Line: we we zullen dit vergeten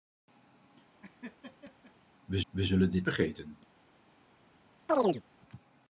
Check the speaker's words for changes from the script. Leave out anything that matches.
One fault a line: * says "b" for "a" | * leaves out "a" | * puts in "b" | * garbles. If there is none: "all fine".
all fine